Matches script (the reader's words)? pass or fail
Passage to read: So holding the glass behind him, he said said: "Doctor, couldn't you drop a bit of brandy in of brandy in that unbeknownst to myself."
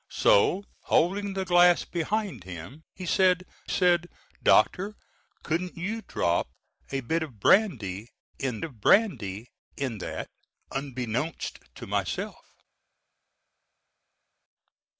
pass